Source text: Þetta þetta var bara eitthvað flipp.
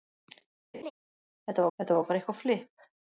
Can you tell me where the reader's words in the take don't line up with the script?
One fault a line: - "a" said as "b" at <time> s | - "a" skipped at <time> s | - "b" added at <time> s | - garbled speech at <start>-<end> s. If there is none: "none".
none